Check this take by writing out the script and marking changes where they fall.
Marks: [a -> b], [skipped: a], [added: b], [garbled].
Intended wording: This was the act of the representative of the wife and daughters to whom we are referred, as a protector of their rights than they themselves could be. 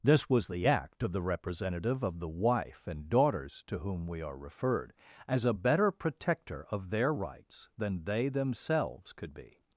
This was the act of the representative of the wife and daughters to whom we are referred, as a [added: better] protector of their rights than they themselves could be.